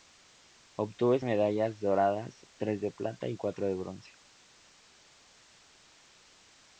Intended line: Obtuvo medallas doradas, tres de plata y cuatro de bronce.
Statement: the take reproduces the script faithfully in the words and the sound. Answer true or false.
true